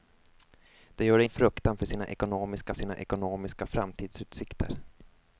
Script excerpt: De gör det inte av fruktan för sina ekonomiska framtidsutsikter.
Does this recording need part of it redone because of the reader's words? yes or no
yes